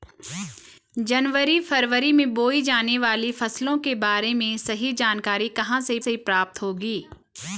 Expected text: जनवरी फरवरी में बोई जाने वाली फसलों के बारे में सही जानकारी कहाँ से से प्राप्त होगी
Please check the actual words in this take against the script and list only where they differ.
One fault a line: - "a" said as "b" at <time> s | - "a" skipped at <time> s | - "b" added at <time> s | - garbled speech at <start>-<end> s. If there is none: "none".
none